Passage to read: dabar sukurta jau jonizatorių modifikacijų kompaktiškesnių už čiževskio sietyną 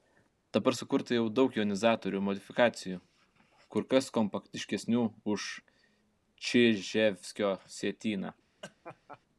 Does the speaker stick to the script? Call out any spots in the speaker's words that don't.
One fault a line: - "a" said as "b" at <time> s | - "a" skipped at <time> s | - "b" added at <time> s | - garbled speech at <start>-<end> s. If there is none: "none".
- "daug" added at 1.3 s
- "kur kas" added at 3.7 s